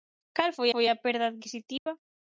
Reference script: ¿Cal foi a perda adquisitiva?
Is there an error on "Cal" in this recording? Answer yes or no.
no